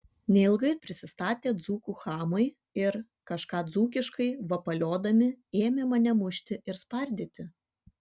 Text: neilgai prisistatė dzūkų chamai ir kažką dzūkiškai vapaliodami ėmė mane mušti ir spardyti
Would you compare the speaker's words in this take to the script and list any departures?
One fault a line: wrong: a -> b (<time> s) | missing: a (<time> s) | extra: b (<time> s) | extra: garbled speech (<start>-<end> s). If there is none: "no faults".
no faults